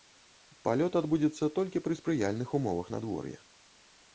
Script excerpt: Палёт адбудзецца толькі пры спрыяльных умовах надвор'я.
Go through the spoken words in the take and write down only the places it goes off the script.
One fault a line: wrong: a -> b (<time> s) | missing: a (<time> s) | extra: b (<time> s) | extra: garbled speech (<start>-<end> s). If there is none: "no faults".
no faults